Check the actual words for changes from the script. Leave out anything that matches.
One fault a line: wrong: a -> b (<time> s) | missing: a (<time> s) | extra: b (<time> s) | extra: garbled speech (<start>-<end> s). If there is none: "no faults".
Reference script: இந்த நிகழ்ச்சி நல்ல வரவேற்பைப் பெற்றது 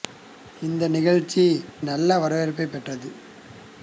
no faults